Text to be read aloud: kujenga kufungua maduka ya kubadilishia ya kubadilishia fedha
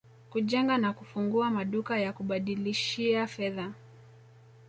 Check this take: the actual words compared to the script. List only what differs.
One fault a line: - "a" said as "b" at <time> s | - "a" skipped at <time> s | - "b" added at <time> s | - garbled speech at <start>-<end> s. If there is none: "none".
- "na" added at 0.8 s
- "ya kubadilishia" skipped at 3.3 s